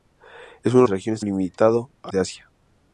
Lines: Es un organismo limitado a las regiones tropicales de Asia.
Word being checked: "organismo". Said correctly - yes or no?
no